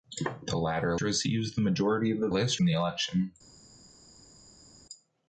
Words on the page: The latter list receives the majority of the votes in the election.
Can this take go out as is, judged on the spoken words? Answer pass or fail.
fail